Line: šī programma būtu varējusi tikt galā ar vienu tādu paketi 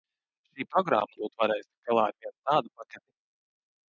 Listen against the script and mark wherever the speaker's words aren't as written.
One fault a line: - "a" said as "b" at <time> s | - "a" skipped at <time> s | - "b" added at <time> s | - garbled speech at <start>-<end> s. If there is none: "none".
none